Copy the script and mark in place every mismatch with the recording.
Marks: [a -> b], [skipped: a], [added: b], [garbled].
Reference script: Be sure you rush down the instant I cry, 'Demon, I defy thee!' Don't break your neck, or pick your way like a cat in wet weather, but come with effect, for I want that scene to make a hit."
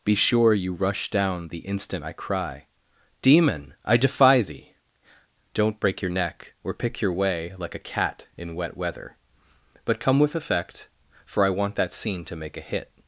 Be sure you rush down the instant I cry, 'Demon, I defy thee!' Don't break your neck, or pick your way like a cat in wet weather, but come with effect, for I want that scene to make a hit."